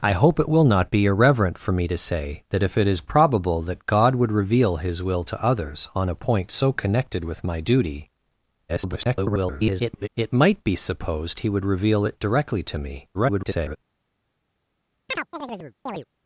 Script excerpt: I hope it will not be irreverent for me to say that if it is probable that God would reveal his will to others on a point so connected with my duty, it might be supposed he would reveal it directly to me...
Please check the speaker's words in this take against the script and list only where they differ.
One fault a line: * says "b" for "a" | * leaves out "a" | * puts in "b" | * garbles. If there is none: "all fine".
* garbles
* garbles